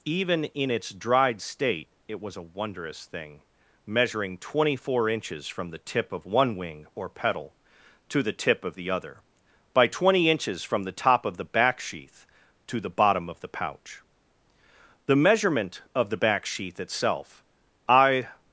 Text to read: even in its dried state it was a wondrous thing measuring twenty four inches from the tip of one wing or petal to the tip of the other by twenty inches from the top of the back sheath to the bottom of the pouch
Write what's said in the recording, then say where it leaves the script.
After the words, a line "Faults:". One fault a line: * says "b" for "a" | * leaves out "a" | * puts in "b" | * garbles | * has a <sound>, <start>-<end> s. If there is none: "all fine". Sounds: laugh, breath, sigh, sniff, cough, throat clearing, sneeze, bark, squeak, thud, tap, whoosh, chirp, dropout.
even in its dried state it was a wondrous thing measuring twenty four inches from the tip of one wing or petal to the tip of the other by twenty inches from the top of the back sheath to the bottom of the pouch the measurement of the back sheath itself i
Faults:
* puts in "the measurement of the back sheath itself i"